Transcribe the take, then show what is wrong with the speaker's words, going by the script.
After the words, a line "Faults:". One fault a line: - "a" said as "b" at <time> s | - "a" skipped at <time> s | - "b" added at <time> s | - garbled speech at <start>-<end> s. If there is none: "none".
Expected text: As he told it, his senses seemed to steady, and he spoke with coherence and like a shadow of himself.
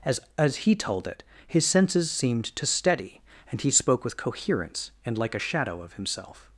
As as he told it, his senses seemed to steady, and he spoke with coherence and like a shadow of himself.
Faults:
- "as" added at 0.4 s